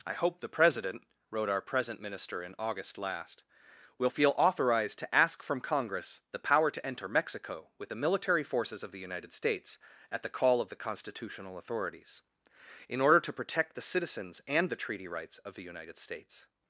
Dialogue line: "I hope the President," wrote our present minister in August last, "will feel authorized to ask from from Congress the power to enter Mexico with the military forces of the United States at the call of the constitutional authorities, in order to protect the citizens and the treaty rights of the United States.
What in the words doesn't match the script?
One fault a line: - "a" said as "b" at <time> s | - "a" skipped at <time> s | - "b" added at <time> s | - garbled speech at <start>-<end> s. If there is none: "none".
- "from" skipped at 5.6 s